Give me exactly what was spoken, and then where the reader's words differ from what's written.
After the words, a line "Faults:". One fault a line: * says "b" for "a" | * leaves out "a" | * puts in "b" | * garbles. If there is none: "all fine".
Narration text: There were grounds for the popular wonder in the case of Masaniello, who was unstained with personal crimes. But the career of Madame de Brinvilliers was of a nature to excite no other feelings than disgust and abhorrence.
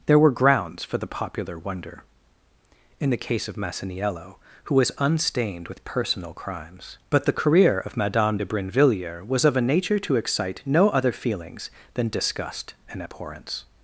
There were grounds for the popular wonder in the case of Masaniello, who was unstained with personal crimes. But the career of Madame de Brinvilliers was of a nature to excite no other feelings than disgust and abhorrence.
Faults:
all fine